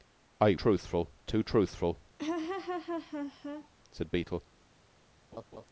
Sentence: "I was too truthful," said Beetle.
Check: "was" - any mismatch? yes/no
yes